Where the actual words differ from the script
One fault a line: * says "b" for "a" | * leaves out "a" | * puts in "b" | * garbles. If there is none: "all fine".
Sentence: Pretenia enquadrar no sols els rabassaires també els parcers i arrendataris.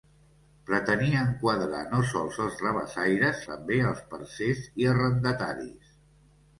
all fine